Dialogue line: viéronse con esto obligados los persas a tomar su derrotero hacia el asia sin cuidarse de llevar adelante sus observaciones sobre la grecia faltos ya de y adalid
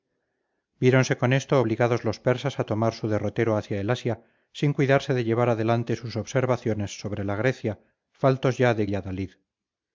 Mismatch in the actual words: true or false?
false